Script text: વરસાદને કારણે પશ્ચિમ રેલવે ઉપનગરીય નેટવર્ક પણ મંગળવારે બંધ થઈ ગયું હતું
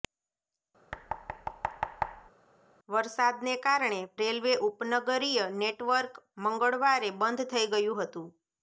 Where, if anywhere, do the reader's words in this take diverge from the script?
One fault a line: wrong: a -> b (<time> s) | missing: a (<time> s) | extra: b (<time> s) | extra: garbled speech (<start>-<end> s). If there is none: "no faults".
missing: પશ્ચિમ (4.0 s)
missing: પણ (6.1 s)